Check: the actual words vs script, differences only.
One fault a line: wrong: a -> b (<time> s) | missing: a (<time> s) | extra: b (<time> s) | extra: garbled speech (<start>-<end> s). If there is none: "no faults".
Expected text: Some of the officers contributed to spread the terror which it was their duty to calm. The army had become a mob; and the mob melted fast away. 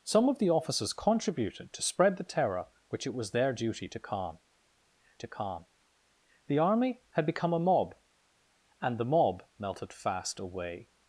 extra: to calm (5.2 s)